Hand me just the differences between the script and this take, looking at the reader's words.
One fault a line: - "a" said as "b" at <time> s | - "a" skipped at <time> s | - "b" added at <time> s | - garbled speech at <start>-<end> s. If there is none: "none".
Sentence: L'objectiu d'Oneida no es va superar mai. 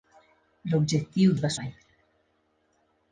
- "d'Oneida no" skipped at 1.4 s
- "superar" skipped at 1.5 s